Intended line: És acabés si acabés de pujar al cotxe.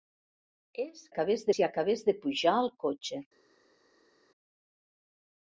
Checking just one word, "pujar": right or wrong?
right